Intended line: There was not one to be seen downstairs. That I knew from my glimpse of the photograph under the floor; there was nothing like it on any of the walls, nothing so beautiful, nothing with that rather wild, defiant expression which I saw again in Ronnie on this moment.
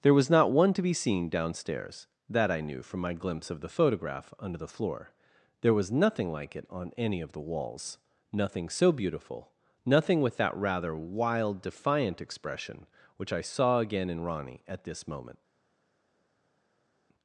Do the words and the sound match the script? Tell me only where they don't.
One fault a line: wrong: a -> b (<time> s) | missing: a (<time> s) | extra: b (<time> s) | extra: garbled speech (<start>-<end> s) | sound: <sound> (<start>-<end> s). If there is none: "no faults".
wrong: on -> at (14.7 s)